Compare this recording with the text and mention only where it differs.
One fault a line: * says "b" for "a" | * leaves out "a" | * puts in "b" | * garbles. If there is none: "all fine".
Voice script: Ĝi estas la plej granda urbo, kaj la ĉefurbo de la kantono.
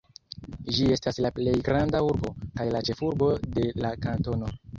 all fine